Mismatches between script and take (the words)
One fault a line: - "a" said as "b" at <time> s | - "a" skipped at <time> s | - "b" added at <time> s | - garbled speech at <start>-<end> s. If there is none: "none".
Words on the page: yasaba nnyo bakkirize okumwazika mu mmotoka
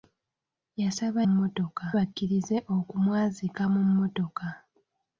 - "nnyo" said as "mmotoka" at 1.3 s